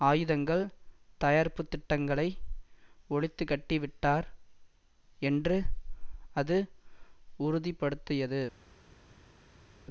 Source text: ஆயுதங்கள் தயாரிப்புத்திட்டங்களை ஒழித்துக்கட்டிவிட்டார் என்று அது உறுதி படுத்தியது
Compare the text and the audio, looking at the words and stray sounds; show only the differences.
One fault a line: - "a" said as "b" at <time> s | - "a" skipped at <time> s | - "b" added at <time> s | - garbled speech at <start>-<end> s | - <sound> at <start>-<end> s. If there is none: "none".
none